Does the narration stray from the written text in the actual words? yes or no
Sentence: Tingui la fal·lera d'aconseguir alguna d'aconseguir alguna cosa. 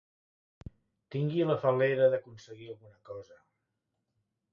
yes